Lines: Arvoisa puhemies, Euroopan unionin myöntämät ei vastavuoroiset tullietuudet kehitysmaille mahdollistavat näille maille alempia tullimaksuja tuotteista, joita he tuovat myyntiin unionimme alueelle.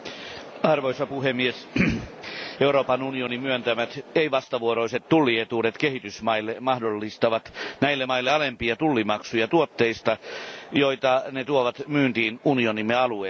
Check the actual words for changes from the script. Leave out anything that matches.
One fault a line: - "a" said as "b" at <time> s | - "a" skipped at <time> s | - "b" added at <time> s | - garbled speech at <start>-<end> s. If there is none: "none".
- "he" said as "ne" at 11.3 s